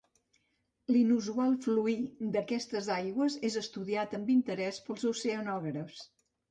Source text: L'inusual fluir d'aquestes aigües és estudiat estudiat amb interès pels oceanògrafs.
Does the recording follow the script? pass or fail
fail